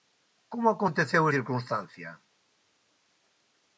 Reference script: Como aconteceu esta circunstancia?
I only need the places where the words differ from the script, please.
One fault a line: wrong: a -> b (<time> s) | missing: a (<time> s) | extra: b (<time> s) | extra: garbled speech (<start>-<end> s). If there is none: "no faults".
missing: esta (1.2 s)